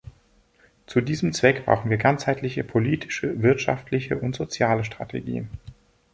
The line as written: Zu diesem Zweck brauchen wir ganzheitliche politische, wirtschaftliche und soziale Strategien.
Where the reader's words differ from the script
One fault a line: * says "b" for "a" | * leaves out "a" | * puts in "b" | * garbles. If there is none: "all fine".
all fine